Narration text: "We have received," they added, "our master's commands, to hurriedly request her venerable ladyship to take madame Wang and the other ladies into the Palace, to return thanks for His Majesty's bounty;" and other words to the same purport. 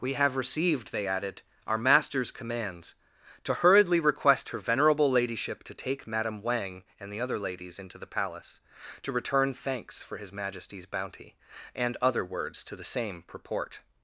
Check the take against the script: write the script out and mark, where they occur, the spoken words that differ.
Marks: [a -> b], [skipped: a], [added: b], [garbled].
"We have received," they added, "our master's commands, to hurriedly request her venerable ladyship to take madame Wang and the other ladies into the Palace, to return thanks for His Majesty's bounty;" and other words to the same purport.